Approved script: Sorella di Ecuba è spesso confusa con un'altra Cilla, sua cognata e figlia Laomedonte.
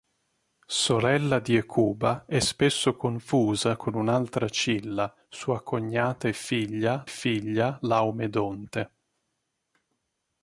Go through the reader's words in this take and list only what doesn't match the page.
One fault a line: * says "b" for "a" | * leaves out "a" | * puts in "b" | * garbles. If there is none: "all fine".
* puts in "figlia"